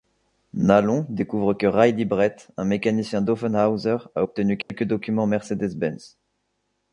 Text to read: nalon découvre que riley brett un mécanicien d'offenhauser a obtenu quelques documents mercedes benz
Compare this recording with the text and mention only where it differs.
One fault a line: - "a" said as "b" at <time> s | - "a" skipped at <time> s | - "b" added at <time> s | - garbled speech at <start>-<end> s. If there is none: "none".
none